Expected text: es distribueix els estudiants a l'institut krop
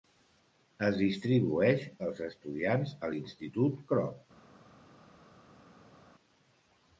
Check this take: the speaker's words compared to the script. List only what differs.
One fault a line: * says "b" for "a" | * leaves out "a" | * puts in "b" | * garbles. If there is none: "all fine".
all fine